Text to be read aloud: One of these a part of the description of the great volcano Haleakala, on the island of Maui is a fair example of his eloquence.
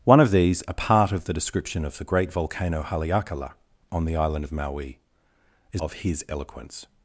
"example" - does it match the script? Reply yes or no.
no